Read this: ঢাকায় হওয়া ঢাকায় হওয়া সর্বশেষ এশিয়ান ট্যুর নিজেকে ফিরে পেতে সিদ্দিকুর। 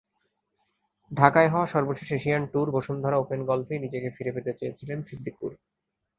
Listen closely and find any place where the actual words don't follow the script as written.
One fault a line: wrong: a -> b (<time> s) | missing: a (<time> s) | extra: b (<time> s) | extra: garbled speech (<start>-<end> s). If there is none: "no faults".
missing: ঢাকায় হওয়া (1.7 s)
extra: বসুন্ধরা ওপেন গলফেই (2.7 s)
extra: চেয়েছিলেন (4.6 s)